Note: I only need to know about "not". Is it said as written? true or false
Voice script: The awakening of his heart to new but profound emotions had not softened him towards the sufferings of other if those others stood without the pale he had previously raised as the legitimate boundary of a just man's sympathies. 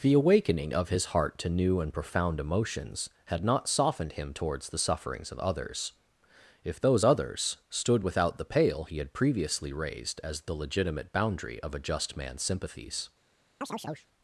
true